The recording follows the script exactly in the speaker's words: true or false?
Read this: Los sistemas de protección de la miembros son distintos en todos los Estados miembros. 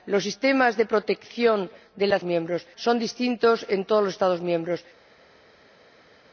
true